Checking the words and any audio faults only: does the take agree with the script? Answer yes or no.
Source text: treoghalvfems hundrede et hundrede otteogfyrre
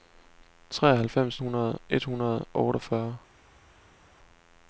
yes